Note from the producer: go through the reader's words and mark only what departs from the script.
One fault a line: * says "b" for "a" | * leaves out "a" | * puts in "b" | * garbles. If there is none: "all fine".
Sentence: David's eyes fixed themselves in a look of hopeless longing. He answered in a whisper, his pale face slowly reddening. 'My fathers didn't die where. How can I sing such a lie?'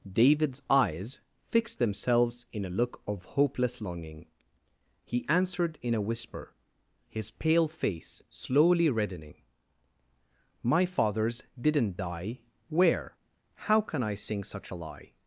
all fine